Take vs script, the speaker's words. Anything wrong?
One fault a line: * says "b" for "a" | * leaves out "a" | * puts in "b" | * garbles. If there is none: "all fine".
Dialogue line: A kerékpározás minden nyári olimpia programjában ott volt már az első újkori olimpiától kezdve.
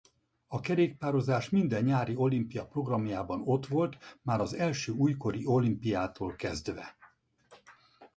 all fine